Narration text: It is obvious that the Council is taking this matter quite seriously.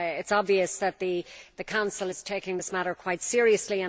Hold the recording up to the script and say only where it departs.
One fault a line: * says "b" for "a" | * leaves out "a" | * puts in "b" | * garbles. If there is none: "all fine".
all fine